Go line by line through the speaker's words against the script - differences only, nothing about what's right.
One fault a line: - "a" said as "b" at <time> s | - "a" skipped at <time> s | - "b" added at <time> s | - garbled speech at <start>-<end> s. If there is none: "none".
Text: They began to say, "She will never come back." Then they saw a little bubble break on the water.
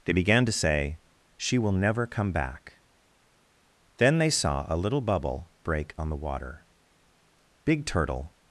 - "Big Turtle" added at 7.7 s